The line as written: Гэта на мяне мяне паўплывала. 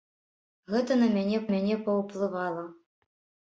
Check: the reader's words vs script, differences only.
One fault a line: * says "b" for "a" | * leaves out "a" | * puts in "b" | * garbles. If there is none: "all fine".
all fine